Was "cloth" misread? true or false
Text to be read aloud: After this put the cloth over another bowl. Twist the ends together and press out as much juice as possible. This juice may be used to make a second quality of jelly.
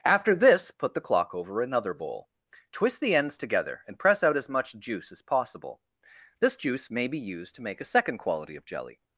true